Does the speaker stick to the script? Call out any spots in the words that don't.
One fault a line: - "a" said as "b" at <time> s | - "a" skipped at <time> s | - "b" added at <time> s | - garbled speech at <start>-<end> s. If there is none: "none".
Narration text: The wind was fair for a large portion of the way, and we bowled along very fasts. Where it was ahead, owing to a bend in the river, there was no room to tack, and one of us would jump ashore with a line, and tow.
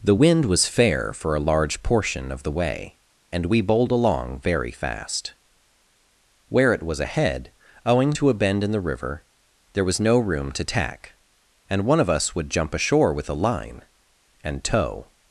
- "fasts" said as "fast" at 4.7 s